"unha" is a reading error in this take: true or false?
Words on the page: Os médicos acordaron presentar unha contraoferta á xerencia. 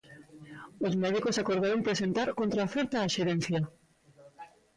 true